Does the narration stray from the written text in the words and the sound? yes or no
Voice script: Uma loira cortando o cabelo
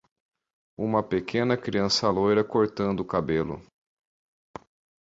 yes